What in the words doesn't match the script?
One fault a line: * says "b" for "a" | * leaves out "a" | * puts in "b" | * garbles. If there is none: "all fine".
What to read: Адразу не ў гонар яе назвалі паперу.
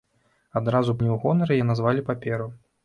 all fine